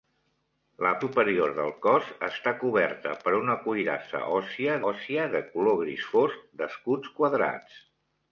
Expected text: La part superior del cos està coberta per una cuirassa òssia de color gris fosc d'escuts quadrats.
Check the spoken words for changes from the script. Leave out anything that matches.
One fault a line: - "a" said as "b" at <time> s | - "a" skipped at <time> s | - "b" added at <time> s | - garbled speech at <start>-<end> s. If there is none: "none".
- "part" skipped at 0.9 s
- "òssia" added at 4.9 s